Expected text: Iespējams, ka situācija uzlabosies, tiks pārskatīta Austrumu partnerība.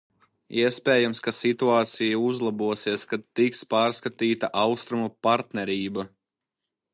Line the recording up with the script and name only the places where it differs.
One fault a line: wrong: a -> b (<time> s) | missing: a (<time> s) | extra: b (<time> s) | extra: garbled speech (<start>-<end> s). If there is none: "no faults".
extra: kad (3.1 s)